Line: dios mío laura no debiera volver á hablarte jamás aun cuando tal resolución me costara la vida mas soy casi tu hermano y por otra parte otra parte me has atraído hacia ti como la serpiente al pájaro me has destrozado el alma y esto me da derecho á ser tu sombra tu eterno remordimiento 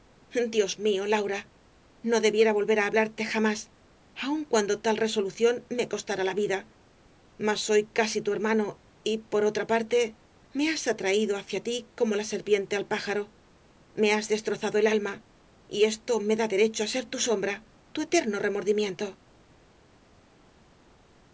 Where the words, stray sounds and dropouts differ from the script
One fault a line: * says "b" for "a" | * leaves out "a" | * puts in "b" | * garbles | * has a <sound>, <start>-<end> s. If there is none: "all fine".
* leaves out "otra parte"